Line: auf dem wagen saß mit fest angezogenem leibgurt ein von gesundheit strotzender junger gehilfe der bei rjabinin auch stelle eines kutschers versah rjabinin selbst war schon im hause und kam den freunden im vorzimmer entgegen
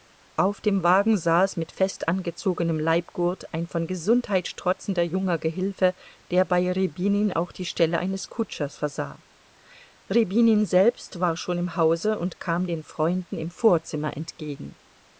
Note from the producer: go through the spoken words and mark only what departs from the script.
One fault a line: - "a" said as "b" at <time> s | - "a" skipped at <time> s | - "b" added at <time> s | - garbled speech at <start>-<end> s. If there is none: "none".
- "die" added at 7.5 s